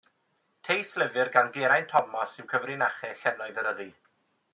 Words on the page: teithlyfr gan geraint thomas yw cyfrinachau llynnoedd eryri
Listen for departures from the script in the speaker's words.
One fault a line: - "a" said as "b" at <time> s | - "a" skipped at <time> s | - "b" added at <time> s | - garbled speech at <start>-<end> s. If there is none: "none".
none